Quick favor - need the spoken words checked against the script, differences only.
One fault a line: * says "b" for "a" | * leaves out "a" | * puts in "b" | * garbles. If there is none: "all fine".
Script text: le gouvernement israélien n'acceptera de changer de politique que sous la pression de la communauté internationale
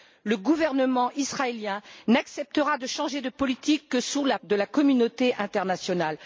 * leaves out "pression"